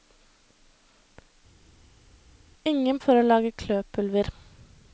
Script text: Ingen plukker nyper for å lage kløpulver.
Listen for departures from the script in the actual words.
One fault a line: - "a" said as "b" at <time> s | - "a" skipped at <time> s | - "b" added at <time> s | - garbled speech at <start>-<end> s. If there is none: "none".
- "plukker nyper" skipped at 3.0 s